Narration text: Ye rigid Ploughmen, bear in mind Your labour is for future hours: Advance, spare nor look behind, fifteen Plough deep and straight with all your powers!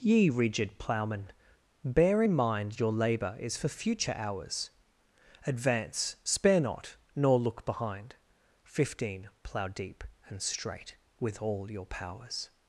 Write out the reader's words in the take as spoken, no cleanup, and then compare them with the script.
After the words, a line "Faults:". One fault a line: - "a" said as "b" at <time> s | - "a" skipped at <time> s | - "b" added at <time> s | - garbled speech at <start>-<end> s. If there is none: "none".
Ye rigid Ploughmen, bear in mind Your labour is for future hours: Advance, spare not, nor look behind, fifteen Plough deep and straight with all your powers!
Faults:
- "not" added at 6.6 s